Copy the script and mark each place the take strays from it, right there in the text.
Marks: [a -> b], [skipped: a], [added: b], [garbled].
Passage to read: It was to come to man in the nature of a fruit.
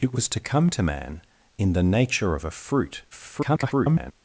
It was to come to man in the nature of a fruit. [garbled]